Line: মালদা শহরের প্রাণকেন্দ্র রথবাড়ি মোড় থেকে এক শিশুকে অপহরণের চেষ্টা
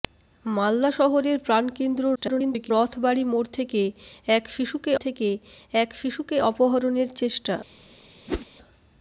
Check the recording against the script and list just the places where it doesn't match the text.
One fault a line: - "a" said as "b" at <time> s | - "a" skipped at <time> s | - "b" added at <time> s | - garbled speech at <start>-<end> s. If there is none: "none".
- garbled speech at 2.2-2.7 s
- "থেকে এক শিশুকে" added at 5.0 s